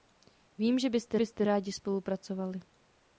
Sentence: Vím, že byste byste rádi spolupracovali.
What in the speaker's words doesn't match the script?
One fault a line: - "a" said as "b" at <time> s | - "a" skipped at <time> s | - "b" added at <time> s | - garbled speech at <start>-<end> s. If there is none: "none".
none